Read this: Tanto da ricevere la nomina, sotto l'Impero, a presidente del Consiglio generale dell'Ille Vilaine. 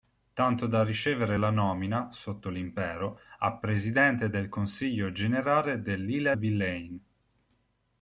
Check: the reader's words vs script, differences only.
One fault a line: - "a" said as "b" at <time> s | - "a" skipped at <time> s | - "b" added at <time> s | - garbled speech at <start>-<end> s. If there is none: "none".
none